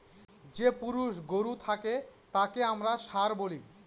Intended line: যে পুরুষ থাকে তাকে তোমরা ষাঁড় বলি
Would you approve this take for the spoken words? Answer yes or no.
no